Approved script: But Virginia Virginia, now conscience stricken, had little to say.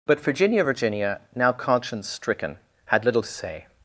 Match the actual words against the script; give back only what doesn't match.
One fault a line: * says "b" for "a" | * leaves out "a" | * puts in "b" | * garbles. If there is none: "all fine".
all fine